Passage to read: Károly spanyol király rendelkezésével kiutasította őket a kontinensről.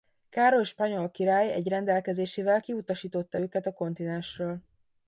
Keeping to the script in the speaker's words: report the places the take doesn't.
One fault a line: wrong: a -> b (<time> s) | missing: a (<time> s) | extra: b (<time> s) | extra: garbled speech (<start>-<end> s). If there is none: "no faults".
extra: egy (1.5 s)